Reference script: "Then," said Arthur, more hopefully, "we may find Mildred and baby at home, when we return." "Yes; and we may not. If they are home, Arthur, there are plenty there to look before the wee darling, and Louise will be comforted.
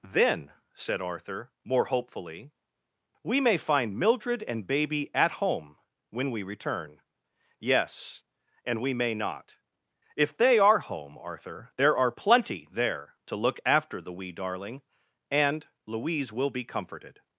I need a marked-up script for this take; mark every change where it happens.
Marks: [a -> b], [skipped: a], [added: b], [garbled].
"Then," said Arthur, more hopefully, "we may find Mildred and baby at home, when we return." "Yes; and we may not. If they are home, Arthur, there are plenty there to look [before -> after] the wee darling, and Louise will be comforted.